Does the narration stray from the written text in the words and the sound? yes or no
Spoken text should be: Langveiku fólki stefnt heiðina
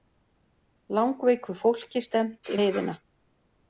no